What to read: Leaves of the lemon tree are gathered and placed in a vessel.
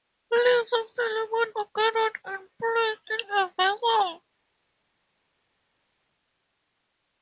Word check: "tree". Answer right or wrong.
wrong